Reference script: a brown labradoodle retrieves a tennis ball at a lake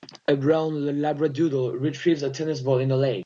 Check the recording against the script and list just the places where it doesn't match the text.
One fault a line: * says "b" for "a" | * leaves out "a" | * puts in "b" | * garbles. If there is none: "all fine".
* says "in" for "at"